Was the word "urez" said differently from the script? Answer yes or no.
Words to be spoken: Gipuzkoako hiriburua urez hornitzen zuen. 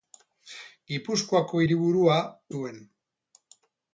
yes